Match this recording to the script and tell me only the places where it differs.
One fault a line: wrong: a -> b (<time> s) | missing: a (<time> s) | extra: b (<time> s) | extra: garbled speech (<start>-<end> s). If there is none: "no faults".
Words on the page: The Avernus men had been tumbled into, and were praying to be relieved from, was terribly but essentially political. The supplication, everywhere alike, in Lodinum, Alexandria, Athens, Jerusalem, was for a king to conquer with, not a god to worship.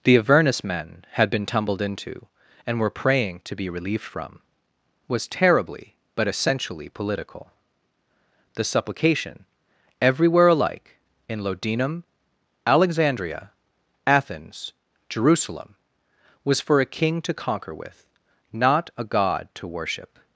no faults